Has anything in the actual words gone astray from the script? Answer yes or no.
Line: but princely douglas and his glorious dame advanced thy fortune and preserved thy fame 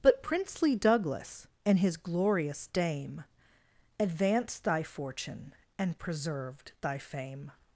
no